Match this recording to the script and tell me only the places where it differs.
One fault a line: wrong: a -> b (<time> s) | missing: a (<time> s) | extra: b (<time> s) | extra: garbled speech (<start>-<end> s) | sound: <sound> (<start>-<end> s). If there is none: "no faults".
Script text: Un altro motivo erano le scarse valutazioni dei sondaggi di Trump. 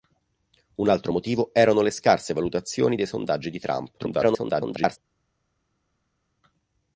extra: garbled speech (4.0-5.0 s)